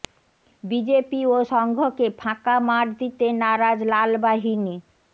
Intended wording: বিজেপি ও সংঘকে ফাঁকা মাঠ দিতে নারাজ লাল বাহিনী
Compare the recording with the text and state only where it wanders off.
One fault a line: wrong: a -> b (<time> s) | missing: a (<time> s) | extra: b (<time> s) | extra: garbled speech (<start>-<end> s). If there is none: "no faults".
no faults